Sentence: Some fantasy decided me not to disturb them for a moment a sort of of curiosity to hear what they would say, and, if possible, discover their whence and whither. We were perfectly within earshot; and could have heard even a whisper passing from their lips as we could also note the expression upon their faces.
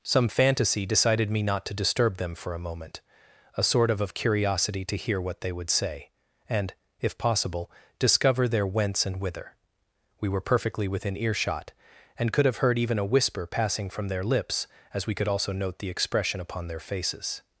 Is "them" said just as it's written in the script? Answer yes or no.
yes